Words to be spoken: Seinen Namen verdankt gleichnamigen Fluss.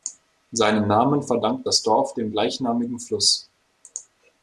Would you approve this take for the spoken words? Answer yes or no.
no